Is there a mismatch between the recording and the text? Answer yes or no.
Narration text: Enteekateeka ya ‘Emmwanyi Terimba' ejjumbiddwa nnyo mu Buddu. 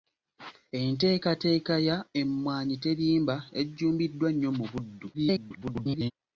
yes